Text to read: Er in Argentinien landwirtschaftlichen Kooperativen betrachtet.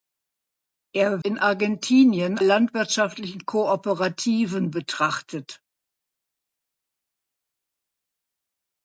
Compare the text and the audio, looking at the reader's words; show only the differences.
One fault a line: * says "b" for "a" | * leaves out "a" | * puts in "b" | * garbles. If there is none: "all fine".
all fine